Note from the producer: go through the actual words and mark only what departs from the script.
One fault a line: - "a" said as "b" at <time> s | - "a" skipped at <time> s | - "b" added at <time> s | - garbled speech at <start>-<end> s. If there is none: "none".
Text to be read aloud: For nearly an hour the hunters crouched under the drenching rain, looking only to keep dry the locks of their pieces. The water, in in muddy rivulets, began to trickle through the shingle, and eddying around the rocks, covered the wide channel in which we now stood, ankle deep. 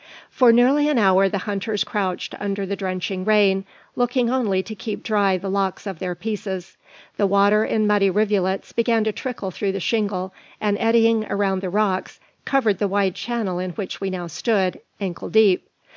- "in" skipped at 7.8 s